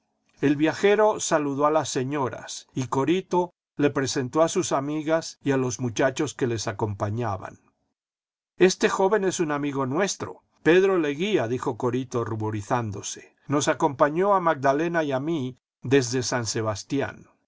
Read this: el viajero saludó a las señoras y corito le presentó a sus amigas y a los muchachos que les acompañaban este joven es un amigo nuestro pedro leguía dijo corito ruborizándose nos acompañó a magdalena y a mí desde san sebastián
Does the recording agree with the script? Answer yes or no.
yes